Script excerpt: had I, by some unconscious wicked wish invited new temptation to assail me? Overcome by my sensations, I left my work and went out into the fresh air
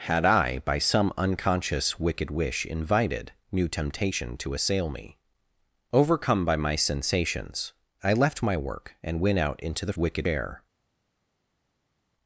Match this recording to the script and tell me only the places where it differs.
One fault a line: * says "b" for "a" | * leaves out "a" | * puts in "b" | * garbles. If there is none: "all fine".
* says "wicked" for "fresh"